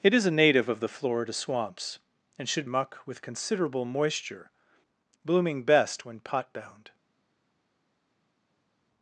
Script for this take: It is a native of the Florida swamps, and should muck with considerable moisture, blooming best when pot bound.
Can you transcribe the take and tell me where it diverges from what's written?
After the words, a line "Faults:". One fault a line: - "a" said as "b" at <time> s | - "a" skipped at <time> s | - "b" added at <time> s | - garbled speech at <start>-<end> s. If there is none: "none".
It is a native of the Florida swamps, and should muck with considerable moisture, blooming best when pot bound.
Faults:
none